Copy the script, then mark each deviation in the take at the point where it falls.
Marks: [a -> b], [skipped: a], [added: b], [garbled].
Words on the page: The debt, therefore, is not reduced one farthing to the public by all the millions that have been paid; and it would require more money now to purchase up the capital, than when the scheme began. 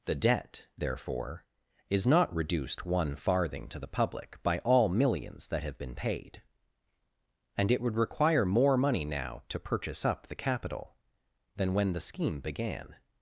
The debt, therefore, is not reduced one farthing to the public by all [skipped: the] millions that have been paid; and it would require more money now to purchase up the capital, than when the scheme began.